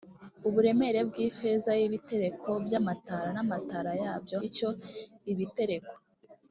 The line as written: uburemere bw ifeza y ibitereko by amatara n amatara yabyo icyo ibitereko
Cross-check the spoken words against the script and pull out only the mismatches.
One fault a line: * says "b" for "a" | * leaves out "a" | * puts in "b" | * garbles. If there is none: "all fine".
all fine